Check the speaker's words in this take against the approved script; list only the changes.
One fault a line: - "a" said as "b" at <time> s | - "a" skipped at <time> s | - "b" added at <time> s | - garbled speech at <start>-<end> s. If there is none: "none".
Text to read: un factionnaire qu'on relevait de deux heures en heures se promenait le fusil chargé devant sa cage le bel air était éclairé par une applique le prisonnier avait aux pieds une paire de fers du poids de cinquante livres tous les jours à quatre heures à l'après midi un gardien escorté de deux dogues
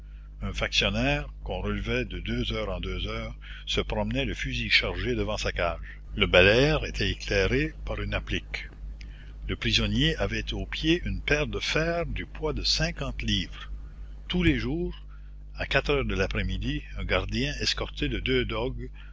- "deux" added at 2.8 s
- "à" said as "de" at 16.1 s